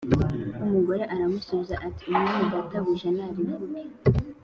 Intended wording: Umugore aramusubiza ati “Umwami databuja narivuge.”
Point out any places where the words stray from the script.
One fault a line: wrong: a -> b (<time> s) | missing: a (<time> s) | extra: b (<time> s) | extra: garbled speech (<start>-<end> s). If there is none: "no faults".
no faults